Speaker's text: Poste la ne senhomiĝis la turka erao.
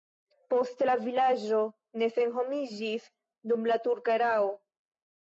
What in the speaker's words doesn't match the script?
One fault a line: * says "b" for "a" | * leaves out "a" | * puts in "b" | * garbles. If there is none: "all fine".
* puts in "vilaĝo"
* puts in "dum"